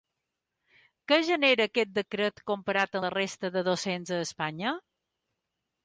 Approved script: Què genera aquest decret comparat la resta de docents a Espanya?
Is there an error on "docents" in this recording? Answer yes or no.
no